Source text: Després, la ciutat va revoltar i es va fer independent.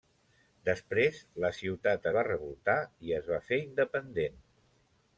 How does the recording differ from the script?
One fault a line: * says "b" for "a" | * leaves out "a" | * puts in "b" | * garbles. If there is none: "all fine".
all fine